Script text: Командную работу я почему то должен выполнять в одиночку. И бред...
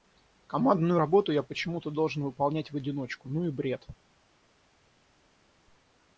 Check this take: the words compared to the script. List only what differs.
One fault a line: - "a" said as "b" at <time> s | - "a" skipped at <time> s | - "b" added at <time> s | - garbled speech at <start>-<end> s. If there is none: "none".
- "Ну" added at 3.3 s